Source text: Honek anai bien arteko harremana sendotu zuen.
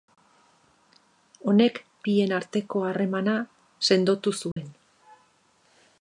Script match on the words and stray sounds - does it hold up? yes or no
no